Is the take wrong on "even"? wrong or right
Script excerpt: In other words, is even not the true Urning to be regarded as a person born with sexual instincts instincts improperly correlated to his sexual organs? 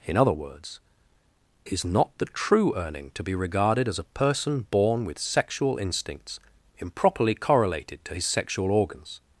wrong